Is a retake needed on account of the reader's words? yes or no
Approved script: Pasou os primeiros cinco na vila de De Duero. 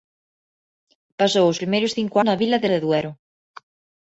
no